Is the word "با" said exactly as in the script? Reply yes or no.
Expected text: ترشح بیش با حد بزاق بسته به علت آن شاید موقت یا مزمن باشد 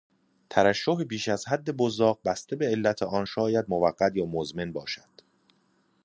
no